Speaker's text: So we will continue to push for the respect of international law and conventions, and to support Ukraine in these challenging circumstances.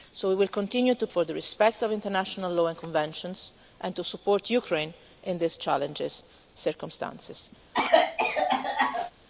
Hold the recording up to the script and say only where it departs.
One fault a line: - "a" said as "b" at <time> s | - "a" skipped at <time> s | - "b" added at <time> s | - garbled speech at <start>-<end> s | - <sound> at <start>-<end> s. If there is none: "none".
- "push" skipped at 1.1 s
- cough at 7.7-9.1 s